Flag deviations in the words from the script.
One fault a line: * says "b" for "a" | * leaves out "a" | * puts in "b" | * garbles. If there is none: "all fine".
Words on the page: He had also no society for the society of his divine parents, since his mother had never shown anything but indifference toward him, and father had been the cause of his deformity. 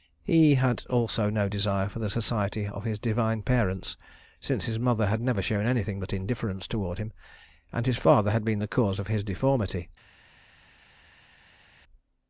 * says "desire" for "society"
* puts in "his"